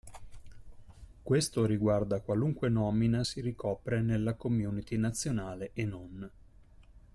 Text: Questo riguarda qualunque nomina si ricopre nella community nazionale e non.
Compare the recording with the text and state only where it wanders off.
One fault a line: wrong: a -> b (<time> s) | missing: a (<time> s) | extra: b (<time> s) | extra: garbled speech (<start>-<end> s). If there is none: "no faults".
no faults